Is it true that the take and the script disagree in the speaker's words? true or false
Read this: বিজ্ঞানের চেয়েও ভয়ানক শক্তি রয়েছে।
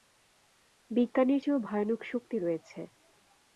false